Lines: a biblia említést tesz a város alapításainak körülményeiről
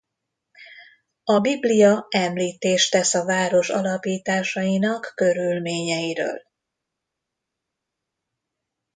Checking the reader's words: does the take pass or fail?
pass